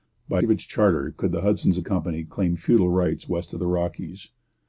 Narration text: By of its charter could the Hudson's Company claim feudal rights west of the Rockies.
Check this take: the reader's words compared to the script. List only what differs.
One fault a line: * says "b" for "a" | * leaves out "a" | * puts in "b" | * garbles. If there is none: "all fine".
all fine